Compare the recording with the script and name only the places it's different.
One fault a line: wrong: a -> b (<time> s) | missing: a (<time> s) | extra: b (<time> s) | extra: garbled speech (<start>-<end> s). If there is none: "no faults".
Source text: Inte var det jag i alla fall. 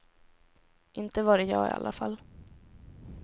no faults